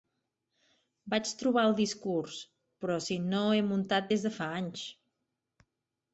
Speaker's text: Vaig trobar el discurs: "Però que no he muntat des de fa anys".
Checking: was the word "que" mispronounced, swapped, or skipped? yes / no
yes